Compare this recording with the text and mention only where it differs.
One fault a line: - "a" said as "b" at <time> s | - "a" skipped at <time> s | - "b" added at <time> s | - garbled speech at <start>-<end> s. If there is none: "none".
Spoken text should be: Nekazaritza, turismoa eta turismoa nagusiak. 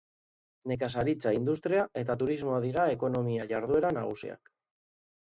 - "turismoa" said as "industria" at 1.4 s
- "dira ekonomia jarduera" added at 2.7 s